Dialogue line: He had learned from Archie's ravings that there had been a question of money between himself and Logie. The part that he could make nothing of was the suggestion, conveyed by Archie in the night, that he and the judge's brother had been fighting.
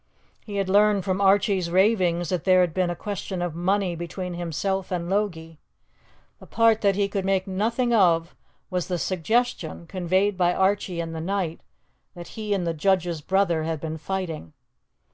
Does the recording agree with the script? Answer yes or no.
yes